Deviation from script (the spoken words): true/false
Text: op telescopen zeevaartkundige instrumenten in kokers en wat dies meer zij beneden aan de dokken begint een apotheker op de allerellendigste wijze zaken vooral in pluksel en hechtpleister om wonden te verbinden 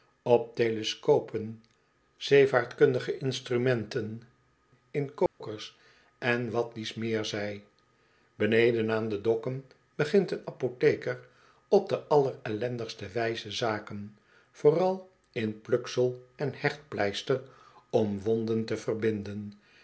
false